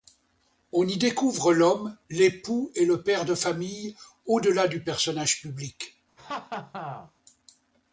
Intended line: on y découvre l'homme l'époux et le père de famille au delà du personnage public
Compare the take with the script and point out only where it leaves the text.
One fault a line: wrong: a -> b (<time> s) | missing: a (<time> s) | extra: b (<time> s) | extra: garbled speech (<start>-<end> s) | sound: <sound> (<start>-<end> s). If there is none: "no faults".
sound: laugh (6.2-7.1 s)